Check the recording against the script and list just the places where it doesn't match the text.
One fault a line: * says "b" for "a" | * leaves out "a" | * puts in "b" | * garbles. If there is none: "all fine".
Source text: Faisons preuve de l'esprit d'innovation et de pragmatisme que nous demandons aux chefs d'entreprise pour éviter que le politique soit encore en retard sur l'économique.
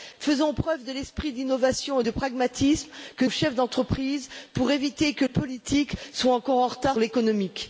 * leaves out "nous demandons"
* leaves out "le"
* leaves out "sur"